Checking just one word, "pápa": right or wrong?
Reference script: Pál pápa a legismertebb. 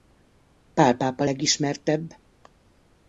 right